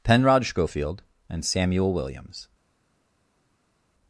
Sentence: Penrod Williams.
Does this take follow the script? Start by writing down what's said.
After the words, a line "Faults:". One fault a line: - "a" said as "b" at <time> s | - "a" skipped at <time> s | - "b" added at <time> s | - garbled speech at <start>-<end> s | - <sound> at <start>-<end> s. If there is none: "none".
Penrod Schofield and Samuel Williams.
Faults:
- "Schofield and Samuel" added at 0.5 s